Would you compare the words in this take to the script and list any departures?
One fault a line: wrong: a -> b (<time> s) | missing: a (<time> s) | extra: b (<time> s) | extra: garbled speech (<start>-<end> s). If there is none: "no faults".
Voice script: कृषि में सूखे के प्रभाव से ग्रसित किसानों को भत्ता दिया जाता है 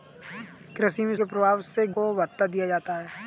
missing: सूखे (1.1 s)
missing: ग्रसित किसानों (1.9 s)